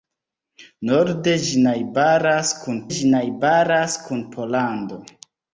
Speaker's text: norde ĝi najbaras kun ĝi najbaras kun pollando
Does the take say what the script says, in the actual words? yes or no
yes